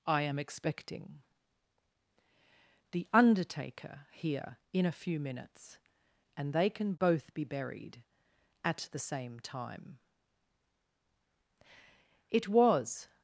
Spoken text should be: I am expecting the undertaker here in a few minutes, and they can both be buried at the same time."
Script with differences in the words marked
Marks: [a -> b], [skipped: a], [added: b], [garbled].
I am expecting the undertaker here in a few minutes, and they can both be buried at the same time." [added: It was]